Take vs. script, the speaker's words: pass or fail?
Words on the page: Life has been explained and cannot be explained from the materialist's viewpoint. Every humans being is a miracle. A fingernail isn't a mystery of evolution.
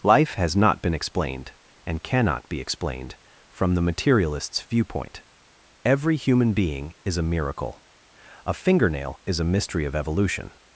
fail